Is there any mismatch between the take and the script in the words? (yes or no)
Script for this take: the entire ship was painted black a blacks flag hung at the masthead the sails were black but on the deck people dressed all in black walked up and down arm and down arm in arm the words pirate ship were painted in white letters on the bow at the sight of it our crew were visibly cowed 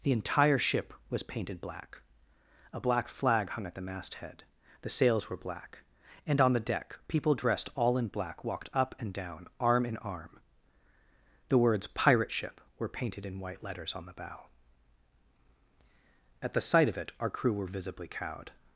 yes